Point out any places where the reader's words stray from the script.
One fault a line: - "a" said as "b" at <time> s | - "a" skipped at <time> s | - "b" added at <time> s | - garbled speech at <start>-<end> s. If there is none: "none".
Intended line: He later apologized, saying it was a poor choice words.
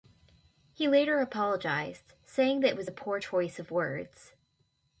- "that" added at 2.6 s
- "of" added at 3.6 s